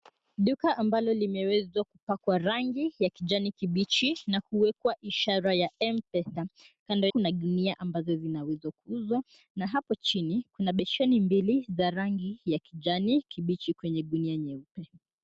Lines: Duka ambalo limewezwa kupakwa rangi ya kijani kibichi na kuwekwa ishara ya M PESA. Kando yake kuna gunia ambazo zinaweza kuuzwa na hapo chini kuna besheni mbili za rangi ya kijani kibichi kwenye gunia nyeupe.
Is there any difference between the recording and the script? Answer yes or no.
yes